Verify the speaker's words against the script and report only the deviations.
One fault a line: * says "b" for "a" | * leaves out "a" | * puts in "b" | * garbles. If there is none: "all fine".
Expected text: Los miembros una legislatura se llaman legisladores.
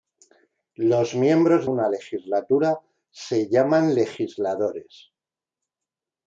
all fine